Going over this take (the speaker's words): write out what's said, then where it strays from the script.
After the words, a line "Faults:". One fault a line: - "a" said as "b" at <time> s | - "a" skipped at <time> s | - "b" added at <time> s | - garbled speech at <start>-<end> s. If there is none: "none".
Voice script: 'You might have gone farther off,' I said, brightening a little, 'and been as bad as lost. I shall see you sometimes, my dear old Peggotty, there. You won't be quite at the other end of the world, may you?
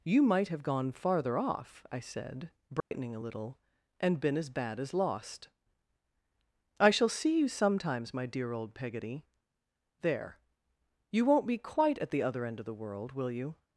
'You might have gone farther off,' I said, brightening a little, 'and been as bad as lost. I shall see you sometimes, my dear old Peggotty, there. You won't be quite at the other end of the world, will you?
Faults:
- "may" said as "will" at 13.1 s